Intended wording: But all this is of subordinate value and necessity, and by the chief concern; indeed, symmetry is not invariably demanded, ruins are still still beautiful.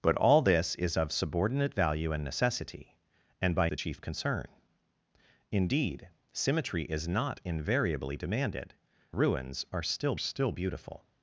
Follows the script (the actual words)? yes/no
yes